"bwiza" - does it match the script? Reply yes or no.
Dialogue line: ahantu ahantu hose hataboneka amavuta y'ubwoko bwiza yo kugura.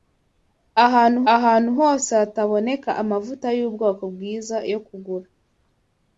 yes